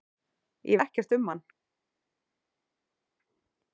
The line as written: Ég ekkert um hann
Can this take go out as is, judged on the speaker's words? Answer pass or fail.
pass